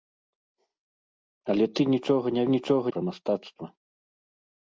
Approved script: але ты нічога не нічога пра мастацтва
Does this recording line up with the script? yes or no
yes